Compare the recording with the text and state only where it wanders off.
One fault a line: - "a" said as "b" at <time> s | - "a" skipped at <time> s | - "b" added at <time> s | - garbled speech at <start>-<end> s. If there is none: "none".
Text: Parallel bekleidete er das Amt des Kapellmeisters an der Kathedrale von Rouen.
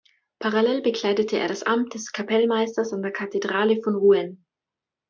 none